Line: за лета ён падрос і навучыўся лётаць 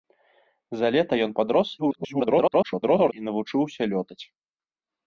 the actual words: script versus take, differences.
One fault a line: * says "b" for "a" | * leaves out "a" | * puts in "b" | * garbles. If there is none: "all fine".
* garbles